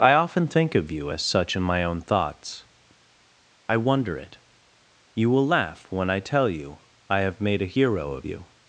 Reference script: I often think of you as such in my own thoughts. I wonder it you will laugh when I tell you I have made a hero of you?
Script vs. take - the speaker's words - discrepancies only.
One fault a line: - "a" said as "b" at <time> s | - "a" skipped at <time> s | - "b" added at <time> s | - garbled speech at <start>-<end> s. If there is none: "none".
none